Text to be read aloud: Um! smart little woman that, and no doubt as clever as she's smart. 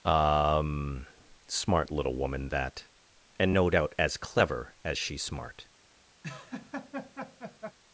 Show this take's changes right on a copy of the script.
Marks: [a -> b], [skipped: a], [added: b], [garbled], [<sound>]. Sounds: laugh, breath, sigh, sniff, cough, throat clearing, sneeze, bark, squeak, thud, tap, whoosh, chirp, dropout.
Um! smart little woman that, and no doubt as clever as she's smart. [laugh]